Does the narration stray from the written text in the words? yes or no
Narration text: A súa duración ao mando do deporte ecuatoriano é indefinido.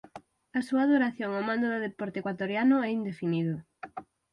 no